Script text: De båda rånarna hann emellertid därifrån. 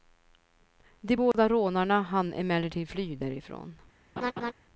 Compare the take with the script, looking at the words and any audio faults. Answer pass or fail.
fail